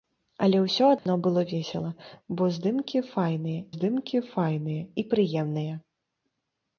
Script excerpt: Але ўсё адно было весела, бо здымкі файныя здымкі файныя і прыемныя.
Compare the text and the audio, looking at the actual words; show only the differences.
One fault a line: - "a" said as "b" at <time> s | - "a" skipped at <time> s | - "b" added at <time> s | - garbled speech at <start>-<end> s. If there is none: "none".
none